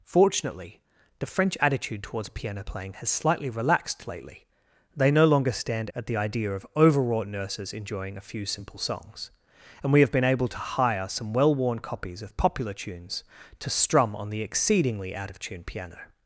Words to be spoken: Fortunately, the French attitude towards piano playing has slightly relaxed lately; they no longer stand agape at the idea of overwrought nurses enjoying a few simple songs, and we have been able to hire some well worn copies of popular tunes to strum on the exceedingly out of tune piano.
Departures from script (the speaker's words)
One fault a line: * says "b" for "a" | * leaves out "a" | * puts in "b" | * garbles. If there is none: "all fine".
* leaves out "agape"